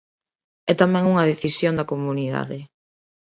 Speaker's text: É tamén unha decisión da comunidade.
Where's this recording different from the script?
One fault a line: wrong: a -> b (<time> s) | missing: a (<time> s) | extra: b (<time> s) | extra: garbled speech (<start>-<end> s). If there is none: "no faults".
no faults